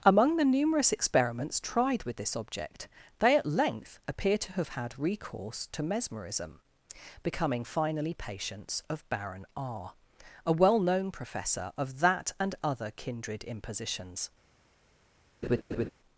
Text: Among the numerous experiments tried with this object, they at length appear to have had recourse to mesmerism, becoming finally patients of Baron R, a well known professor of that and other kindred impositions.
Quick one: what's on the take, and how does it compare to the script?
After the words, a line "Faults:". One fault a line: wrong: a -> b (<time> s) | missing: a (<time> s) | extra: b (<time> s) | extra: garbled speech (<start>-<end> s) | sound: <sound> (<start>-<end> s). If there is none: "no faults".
Among the numerous experiments tried with this object, they at length appear to have had recourse to mesmerism, becoming finally patients of Baron R, a well known professor of that and other kindred impositions.
Faults:
sound: laugh (15.4-15.9 s)